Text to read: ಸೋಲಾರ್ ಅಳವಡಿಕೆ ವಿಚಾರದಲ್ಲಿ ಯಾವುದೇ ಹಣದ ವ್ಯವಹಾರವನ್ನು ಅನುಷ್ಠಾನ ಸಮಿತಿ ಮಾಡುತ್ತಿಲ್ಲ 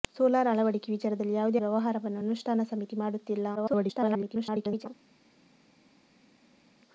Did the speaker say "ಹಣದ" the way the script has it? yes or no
no